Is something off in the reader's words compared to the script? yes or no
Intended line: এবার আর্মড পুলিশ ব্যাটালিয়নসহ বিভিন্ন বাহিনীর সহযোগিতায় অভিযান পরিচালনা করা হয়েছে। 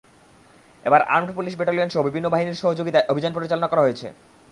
no